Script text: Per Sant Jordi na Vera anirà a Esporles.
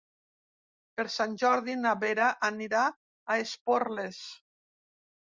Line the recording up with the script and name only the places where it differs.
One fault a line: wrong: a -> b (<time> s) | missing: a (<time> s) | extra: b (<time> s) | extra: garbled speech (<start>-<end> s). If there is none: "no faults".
no faults